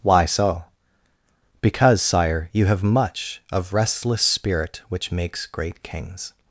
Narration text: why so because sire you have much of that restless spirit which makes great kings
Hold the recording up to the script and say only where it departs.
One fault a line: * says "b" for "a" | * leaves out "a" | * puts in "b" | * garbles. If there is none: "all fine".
* leaves out "that"